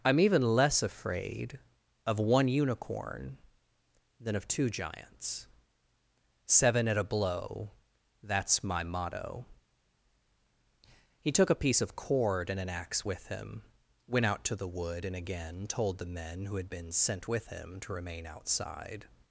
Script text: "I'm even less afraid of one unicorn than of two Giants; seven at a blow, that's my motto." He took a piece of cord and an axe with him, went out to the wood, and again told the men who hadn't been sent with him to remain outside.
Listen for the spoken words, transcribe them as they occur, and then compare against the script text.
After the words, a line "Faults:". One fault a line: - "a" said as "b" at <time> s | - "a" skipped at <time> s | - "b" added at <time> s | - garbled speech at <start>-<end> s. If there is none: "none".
"I'm even less afraid of one unicorn than of two Giants; seven at a blow, that's my motto." He took a piece of cord and an axe with him, went out to the wood, and again told the men who had been sent with him to remain outside.
Faults:
- "hadn't" said as "had" at 16.6 s